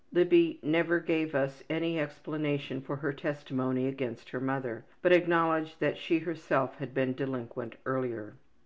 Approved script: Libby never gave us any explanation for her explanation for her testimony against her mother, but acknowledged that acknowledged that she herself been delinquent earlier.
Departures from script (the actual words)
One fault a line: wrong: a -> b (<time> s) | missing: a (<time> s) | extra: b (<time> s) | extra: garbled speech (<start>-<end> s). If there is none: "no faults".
missing: explanation for her (3.1 s)
missing: acknowledged that (6.0 s)
extra: had (6.8 s)